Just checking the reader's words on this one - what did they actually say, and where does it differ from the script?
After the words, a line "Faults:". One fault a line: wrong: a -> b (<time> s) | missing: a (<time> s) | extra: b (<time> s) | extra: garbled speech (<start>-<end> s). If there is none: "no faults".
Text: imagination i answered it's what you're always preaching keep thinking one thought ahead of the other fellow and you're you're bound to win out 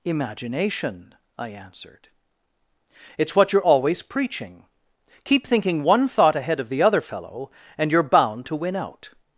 imagination i answered it's what you're always preaching keep thinking one thought ahead of the other fellow and you're bound to win out
Faults:
missing: you're (8.0 s)